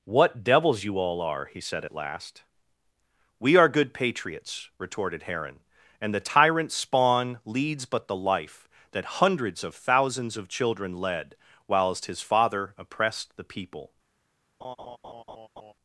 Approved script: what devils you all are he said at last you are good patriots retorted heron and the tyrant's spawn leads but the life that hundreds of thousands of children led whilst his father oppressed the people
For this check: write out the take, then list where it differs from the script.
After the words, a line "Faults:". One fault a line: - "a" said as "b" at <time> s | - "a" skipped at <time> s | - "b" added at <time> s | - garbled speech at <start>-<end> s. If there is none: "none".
what devils you all are he said at last we are good patriots retorted heron and the tyrant's spawn leads but the life that hundreds of thousands of children led whilst his father oppressed the people
Faults:
- "you" said as "we" at 3.4 s